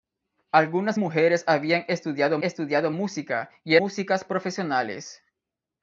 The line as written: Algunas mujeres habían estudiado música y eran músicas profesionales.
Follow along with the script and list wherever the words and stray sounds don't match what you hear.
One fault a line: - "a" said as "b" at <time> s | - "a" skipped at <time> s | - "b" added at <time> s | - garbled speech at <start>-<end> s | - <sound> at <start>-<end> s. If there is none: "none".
- "estudiado" added at 2.4 s
- "eran" skipped at 3.8 s